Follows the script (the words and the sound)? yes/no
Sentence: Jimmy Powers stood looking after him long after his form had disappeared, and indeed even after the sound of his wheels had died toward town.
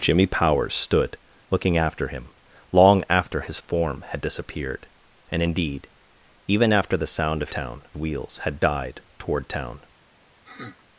no